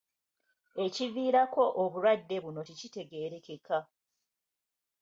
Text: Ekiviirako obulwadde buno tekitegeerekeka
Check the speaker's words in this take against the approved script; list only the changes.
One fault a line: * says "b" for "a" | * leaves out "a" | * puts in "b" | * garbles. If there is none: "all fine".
all fine